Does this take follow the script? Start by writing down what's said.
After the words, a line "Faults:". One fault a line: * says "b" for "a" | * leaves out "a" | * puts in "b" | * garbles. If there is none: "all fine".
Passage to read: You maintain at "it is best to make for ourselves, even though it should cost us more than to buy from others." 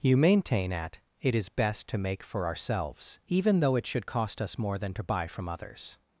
You maintain at "it is best to make for ourselves, even though it should cost us more than to buy from others."
Faults:
all fine